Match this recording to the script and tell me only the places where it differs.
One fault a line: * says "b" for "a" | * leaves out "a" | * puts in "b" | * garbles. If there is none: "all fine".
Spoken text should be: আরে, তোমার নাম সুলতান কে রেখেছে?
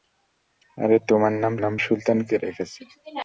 * puts in "নাম"